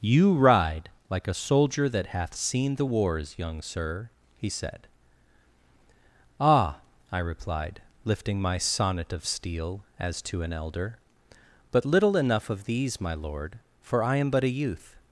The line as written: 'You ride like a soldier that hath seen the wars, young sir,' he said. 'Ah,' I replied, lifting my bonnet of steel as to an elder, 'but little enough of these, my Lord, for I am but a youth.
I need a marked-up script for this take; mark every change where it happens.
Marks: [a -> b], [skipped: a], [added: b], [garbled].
'You ride like a soldier that hath seen the wars, young sir,' he said. 'Ah,' I replied, lifting my [bonnet -> sonnet] of steel as to an elder, 'but little enough of these, my Lord, for I am but a youth.